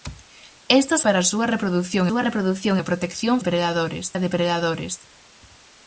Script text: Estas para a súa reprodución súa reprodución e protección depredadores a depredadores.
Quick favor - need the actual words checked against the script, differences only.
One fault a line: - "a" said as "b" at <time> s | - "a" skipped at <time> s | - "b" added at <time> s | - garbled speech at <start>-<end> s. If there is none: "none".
none